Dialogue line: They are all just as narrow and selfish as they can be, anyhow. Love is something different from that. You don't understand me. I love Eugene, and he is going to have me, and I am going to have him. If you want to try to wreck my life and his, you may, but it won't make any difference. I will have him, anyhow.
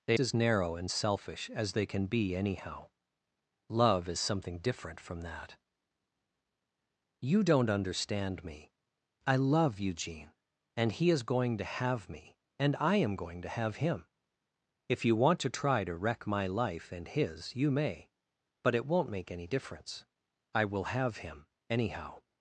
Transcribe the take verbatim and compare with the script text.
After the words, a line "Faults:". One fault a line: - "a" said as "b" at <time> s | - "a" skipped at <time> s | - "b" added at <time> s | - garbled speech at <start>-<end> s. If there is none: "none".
They as narrow and selfish as they can be, anyhow. Love is something different from that. You don't understand me. I love Eugene, and he is going to have me, and I am going to have him. If you want to try to wreck my life and his, you may, but it won't make any difference. I will have him, anyhow.
Faults:
- "are all just" skipped at 0.2 s